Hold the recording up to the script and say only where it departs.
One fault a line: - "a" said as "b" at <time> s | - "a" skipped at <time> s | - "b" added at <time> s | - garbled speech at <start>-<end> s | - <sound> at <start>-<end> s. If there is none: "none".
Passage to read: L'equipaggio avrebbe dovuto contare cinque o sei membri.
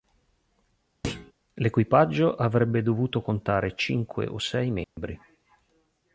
- thud at 1.0-1.3 s
- dropout at 4.8-5.0 s